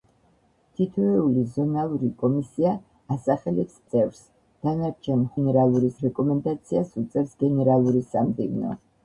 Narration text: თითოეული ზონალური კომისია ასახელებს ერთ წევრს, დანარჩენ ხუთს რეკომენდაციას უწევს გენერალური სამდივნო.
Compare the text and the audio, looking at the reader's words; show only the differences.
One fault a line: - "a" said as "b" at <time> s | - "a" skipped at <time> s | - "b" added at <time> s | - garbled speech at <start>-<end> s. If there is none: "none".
- "ერთ" skipped at 3.8 s
- "ხუთს" said as "გენერალური" at 5.4 s